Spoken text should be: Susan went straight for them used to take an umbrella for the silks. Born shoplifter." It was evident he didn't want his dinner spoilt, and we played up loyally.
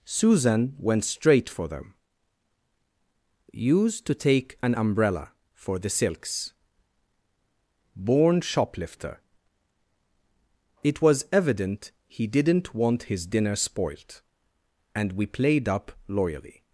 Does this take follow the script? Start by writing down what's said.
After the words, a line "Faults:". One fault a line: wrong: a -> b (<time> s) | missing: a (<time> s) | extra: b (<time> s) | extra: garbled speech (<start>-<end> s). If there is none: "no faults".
Susan went straight for them used to take an umbrella for the silks. Born shoplifter." It was evident he didn't want his dinner spoilt, and we played up loyally.
Faults:
no faults